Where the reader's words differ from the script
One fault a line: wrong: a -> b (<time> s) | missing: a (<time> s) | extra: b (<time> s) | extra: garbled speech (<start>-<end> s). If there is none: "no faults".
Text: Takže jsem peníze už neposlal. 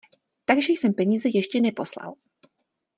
wrong: už -> ještě (1.3 s)